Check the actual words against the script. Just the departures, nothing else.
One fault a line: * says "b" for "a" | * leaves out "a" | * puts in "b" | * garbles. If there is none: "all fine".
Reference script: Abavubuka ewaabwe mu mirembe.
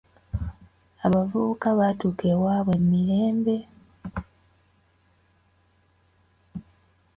* puts in "baatuuka"